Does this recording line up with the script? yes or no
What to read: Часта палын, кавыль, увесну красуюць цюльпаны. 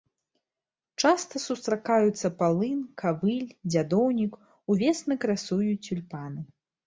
no